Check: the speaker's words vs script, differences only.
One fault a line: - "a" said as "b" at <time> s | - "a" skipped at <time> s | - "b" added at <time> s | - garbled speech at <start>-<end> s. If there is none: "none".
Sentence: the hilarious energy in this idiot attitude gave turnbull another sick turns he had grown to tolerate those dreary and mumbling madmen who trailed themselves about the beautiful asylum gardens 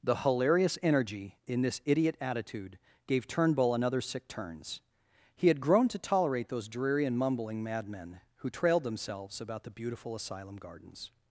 none